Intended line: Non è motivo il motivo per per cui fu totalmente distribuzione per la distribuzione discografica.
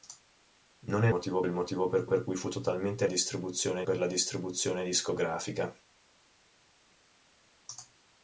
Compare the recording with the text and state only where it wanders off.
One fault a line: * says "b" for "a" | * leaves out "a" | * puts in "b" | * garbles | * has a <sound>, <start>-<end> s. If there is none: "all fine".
all fine